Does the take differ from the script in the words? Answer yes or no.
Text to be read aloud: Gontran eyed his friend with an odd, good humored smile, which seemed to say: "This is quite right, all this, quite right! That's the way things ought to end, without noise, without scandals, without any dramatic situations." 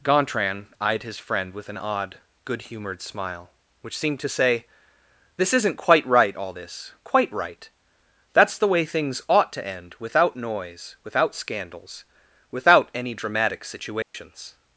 yes